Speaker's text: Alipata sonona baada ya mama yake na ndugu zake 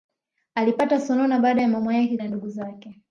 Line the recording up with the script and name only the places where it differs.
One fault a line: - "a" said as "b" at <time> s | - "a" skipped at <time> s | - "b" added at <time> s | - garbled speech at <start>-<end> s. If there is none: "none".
none